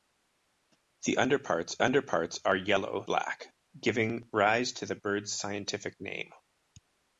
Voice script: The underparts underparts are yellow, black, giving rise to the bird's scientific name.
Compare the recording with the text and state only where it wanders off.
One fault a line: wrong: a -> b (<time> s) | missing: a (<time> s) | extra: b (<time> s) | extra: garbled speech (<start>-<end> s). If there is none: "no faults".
no faults